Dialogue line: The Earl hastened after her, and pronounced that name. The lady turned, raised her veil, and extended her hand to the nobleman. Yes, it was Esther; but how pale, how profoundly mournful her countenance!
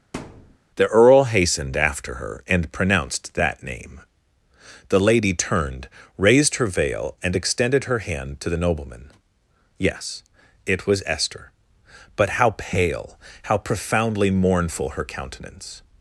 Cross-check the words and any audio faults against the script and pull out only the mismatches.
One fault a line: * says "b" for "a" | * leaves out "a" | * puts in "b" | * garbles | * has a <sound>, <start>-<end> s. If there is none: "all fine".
* has a thud, 0.1-0.6 s